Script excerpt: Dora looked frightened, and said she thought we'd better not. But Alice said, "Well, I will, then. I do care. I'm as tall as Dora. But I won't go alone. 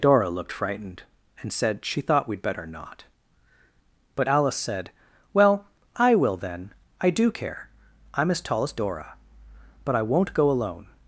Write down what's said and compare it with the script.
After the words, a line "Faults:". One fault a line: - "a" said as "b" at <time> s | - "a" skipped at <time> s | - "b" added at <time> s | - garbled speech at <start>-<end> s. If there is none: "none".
Dora looked frightened, and said she thought we'd better not. But Alice said, "Well, I will, then. I do care. I'm as tall as Dora. But I won't go alone.
Faults:
none